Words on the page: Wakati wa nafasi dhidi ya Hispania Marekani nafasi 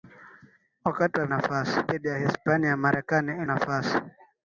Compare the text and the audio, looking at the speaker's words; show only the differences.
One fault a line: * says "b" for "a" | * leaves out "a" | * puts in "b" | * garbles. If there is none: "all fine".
all fine